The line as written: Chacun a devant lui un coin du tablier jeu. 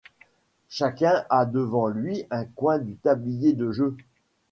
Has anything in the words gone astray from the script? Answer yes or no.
yes